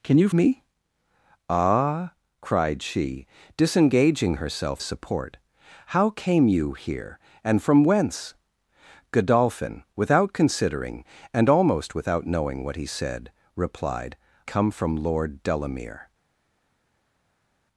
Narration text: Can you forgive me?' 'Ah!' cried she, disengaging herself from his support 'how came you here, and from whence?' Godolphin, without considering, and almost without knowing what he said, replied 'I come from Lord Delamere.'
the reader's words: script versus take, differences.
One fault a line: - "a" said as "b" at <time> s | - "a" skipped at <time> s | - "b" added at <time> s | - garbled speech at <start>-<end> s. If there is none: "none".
- "forgive" skipped at 0.3 s
- "from his" skipped at 4.8 s
- "I" skipped at 14.2 s